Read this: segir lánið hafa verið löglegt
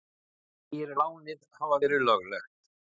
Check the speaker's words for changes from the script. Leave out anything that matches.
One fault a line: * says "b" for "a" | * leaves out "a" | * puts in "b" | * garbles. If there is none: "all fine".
all fine